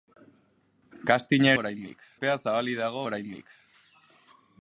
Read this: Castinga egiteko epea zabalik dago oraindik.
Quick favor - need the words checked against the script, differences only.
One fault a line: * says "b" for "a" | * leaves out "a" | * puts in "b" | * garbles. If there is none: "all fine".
* says "oraindik" for "egiteko"